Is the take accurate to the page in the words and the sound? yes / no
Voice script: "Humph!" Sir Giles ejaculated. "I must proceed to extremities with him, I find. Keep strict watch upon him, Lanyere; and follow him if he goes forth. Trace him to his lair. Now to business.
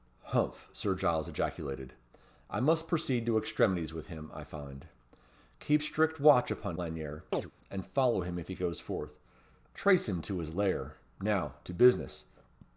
no